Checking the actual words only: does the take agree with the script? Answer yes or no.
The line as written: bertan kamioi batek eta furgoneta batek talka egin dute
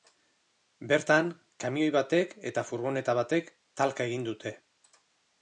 yes